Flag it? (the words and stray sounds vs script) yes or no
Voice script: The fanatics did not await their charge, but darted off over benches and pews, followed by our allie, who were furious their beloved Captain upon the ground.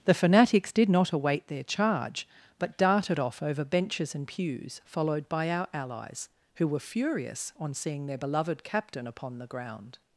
yes